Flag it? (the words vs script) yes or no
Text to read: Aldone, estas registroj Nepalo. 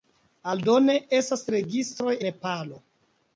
no